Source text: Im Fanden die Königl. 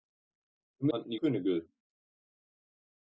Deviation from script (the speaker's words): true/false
false